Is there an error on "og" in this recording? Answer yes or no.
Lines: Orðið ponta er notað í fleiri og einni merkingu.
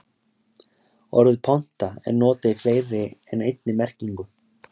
yes